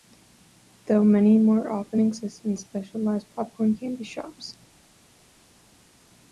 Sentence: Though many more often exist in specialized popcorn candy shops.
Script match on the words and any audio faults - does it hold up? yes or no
yes